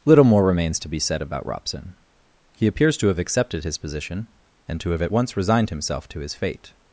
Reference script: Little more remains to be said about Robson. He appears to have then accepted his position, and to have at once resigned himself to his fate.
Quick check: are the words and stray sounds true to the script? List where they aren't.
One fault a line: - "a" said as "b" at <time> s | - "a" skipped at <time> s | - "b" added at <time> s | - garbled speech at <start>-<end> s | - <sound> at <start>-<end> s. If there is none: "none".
- "then" skipped at 3.2 s